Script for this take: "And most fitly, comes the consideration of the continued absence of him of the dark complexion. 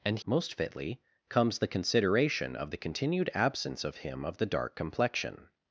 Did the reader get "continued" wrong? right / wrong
right